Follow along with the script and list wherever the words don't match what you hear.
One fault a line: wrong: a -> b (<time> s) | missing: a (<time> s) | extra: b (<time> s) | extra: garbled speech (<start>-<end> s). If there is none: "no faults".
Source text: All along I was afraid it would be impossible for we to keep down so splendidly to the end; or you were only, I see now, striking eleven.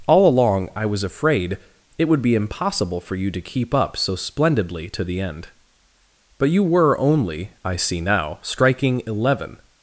wrong: we -> you (3.1 s)
wrong: down -> up (3.7 s)
wrong: or -> but (6.4 s)